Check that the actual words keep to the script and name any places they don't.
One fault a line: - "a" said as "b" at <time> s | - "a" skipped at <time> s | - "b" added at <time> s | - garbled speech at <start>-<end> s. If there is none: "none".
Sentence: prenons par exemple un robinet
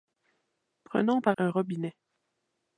- "exemple" skipped at 1.4 s